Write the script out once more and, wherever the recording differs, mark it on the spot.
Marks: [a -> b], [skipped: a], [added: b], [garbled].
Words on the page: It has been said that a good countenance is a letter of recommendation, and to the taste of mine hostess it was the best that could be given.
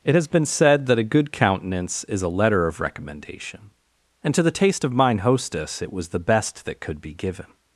It has been said that a good countenance is a letter of recommendation, and to the taste of mine hostess it was the best that could be given.